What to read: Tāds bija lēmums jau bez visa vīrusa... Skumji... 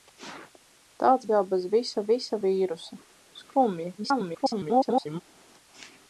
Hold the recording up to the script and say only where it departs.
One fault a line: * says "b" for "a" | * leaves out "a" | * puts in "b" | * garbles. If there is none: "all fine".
* leaves out "bija lēmums"
* puts in "visa"
* garbles